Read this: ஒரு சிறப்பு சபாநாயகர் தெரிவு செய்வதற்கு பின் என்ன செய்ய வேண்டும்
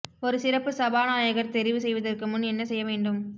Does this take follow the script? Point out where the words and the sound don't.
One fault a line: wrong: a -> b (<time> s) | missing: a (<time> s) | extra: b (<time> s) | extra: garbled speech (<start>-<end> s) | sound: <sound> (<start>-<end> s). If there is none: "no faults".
wrong: பின் -> முன் (2.3 s)